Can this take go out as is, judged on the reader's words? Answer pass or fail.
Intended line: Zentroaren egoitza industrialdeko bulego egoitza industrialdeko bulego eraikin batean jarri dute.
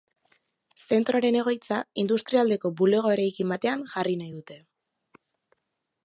fail